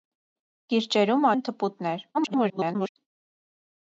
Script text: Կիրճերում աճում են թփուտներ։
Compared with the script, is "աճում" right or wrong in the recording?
wrong